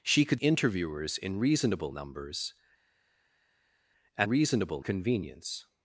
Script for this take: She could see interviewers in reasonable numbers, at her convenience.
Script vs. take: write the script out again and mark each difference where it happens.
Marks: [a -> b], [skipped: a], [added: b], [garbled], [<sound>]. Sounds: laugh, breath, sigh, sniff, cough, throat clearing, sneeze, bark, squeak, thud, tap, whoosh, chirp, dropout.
She could [skipped: see] interviewers in reasonable numbers, at [her -> reasonable] convenience.